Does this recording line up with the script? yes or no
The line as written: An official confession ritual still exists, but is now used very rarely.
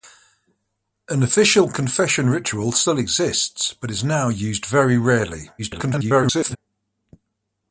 no